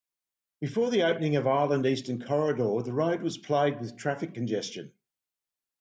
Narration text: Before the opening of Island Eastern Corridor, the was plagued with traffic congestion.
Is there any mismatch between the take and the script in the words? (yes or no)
yes